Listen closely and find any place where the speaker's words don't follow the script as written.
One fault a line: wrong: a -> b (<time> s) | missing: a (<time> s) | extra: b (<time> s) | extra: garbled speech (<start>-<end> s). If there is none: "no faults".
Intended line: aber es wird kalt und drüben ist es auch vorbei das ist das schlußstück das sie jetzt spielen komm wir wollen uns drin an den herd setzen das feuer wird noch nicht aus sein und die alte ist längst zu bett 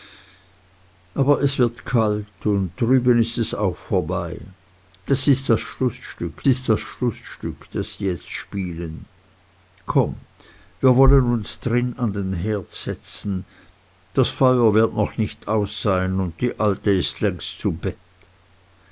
extra: ist das schlußstück (6.5 s)